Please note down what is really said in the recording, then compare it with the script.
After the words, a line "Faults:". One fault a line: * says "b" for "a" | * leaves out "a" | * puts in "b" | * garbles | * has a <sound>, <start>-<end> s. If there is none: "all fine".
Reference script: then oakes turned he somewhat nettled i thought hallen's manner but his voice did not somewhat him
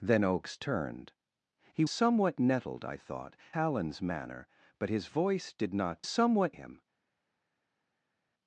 then oakes turned he somewhat nettled i thought hallen's manner but his voice did not somewhat him
Faults:
all fine